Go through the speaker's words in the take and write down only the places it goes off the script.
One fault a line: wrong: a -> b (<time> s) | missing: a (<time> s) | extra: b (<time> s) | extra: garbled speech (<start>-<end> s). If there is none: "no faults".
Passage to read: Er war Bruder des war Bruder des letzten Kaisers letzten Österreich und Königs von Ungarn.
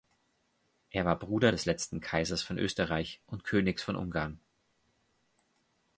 missing: war Bruder des (1.6 s)
wrong: letzten -> von (2.4 s)